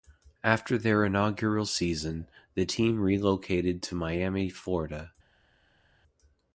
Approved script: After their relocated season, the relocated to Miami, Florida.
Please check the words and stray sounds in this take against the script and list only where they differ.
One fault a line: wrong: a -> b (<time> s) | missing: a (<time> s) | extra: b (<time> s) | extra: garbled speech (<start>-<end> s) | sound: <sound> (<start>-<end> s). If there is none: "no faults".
wrong: relocated -> inaugural (1.1 s)
extra: team (2.6 s)